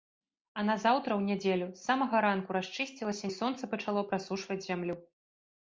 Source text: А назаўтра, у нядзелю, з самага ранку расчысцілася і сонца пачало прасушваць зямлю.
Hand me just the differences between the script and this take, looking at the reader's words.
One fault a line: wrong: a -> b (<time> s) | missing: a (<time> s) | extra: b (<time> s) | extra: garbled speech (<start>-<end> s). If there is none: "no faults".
no faults